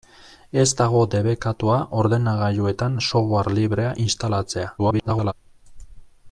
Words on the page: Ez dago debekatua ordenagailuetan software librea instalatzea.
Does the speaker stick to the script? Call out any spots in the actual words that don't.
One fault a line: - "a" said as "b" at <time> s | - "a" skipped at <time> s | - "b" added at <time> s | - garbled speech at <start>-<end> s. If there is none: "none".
- garbled speech at 4.8-5.3 s